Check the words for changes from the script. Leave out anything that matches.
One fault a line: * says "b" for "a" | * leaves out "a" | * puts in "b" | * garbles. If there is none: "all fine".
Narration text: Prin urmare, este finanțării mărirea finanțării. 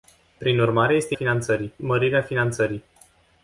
all fine